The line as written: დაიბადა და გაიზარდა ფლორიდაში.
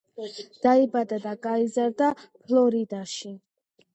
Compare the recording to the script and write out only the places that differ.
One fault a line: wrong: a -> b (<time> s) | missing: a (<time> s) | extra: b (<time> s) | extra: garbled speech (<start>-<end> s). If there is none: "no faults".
no faults